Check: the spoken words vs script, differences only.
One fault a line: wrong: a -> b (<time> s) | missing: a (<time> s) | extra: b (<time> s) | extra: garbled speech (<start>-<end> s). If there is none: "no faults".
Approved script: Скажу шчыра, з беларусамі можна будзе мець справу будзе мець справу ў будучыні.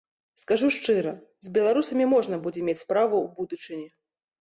missing: будзе мець справу (3.1 s)